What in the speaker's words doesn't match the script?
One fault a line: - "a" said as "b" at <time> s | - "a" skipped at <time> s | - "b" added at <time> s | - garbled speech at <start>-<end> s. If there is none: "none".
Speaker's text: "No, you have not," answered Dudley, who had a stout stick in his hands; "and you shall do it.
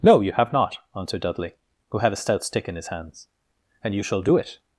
none